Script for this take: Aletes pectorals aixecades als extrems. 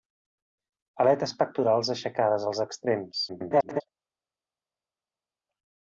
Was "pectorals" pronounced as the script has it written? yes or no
yes